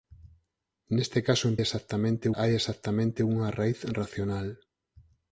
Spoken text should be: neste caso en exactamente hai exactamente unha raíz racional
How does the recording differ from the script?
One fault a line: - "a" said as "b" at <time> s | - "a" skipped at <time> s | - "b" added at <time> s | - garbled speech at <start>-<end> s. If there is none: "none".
none